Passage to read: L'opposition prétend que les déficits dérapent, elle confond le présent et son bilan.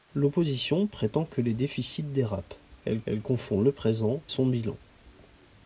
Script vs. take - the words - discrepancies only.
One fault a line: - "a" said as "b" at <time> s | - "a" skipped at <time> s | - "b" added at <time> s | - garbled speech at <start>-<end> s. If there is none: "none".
- "elle" added at 3.1 s
- "et" skipped at 4.2 s